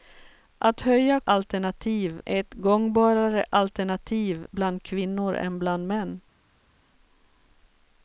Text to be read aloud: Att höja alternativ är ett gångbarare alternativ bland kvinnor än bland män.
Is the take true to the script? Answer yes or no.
yes